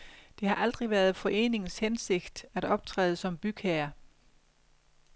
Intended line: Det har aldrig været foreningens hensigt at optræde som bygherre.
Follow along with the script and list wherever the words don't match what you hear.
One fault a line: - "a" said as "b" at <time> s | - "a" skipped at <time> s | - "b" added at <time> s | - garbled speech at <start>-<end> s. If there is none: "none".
none